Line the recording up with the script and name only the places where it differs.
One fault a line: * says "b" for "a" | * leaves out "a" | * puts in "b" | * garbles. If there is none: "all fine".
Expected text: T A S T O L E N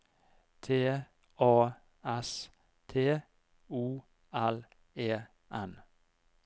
all fine